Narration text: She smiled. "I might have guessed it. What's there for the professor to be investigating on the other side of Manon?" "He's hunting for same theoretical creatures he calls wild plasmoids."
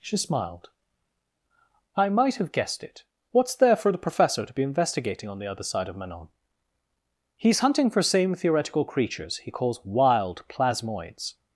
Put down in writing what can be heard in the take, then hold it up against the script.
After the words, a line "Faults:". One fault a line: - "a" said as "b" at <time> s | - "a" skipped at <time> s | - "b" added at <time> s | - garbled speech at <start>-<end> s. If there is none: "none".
She smiled. "I might have guessed it. What's there for the professor to be investigating on the other side of Manon?" "He's hunting for same theoretical creatures he calls wild plasmoids."
Faults:
none